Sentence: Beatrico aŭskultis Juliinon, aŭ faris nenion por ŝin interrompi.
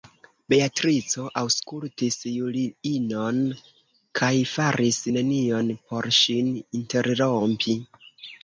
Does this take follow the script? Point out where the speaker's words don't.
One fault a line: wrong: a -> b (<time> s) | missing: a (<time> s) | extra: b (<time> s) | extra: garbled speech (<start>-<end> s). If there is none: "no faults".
wrong: aŭ -> kaj (4.2 s)